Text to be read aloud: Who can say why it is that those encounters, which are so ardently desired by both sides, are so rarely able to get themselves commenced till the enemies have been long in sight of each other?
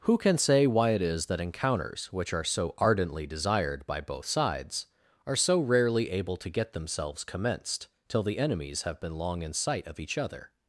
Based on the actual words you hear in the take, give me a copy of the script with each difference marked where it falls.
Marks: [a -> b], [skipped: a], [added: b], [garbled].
Who can say why it is that [skipped: those] encounters, which are so ardently desired by both sides, are so rarely able to get themselves commenced till the enemies have been long in sight of each other?